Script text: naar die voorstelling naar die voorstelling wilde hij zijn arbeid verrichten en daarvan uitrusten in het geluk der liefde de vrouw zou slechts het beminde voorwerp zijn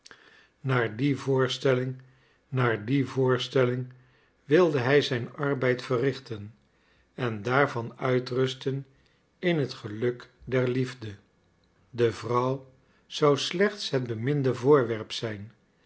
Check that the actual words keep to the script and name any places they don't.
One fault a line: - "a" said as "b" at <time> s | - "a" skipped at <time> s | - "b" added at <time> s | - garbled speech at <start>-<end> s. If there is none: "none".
none